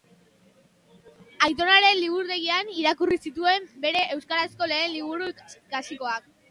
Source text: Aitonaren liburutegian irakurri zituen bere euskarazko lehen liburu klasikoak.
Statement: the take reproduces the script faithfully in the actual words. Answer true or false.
true